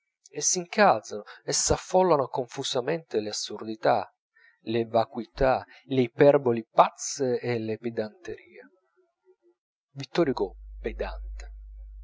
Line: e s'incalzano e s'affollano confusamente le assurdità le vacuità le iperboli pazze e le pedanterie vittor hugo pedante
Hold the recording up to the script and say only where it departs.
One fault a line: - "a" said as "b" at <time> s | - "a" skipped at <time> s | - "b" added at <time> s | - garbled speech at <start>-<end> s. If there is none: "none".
none